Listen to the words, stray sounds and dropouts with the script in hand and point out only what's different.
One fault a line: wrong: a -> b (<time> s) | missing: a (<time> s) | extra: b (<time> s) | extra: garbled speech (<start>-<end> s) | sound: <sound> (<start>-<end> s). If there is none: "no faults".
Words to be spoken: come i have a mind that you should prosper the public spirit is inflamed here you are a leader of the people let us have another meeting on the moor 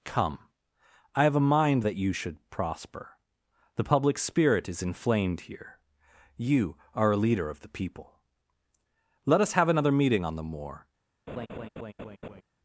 sound: laugh (11.3-12.4 s)